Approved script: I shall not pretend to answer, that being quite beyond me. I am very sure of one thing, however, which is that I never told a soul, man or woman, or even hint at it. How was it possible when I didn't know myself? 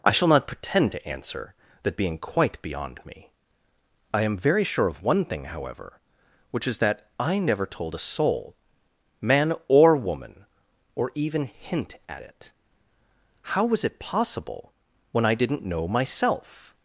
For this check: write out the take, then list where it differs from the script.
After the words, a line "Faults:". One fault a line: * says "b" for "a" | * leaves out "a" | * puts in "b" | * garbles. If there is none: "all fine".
I shall not pretend to answer, that being quite beyond me. I am very sure of one thing, however, which is that I never told a soul, man or woman, or even hint at it. How was it possible when I didn't know myself?
Faults:
all fine